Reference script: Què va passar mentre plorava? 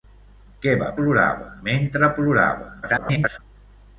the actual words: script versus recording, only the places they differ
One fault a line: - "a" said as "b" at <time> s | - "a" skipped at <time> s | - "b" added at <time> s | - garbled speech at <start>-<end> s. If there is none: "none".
- "passar" said as "plorava" at 1.0 s
- garbled speech at 2.8-3.4 s